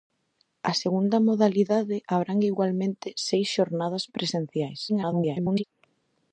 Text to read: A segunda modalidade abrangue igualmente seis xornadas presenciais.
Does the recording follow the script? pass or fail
fail